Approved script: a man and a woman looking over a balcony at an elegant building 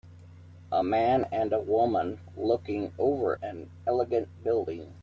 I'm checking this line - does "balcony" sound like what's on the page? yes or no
no